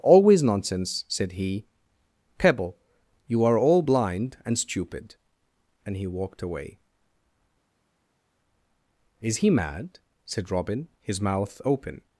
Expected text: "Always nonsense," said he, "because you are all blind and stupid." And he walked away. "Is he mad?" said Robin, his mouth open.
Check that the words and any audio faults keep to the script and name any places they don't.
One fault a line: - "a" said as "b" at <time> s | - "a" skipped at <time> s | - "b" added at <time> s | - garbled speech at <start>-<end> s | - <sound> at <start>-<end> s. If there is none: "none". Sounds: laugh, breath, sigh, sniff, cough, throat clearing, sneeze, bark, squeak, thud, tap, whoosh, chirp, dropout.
- "because" said as "pebble" at 2.4 s